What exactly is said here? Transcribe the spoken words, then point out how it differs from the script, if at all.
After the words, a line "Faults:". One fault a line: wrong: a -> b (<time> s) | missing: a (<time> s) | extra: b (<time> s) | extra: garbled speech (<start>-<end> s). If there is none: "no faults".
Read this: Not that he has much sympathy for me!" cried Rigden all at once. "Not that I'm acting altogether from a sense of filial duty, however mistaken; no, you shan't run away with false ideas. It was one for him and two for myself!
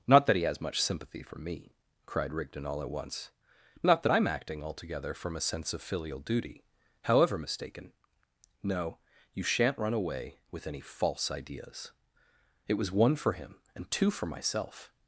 Not that he has much sympathy for me!" cried Rigden all at once. "Not that I'm acting altogether from a sense of filial duty, however mistaken; no, you shan't run away with any false ideas. It was one for him and two for myself!
Faults:
extra: any (10.7 s)